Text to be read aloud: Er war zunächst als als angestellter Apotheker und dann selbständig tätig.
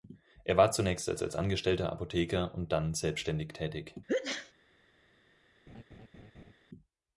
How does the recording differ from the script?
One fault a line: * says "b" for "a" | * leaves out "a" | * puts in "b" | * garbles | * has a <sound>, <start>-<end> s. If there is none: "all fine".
* has a sneeze, 4.1-4.5 s
* has a laugh, 5.7-6.5 s